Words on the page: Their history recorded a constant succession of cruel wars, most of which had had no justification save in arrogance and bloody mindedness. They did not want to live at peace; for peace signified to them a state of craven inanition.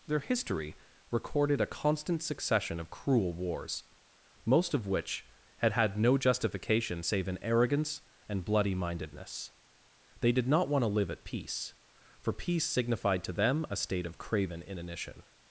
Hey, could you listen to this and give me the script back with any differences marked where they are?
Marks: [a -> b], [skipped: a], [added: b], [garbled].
Their history recorded a constant succession of cruel wars, most of which had had no justification save in arrogance and bloody mindedness. They did not want to live at peace; for peace signified to them a state of craven inanition.